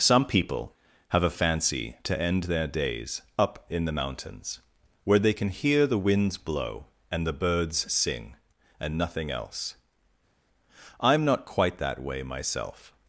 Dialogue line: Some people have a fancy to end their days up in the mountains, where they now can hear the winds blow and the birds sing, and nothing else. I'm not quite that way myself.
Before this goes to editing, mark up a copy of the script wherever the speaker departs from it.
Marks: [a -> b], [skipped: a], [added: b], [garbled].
Some people have a fancy to end their days up in the mountains, where they [skipped: now] can hear the winds blow and the birds sing, and nothing else. I'm not quite that way myself.